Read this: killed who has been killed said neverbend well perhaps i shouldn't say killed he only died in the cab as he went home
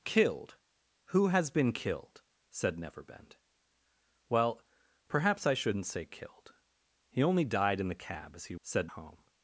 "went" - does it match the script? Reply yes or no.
no